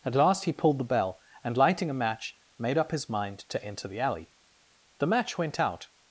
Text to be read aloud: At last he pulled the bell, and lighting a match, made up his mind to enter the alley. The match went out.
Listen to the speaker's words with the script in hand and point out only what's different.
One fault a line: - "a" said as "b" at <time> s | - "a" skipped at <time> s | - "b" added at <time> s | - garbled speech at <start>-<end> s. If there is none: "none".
none